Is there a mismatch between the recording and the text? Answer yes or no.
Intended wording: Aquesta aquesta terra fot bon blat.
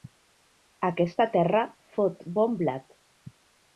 yes